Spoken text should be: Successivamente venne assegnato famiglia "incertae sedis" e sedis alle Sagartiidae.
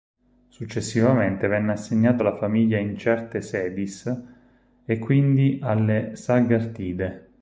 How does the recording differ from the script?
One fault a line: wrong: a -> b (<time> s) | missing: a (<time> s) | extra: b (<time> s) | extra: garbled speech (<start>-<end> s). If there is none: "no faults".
extra: alla (2.2 s)
wrong: sedis -> quindi (5.0 s)